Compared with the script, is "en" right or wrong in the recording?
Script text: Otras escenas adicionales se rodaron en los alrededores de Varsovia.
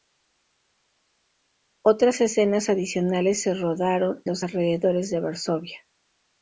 wrong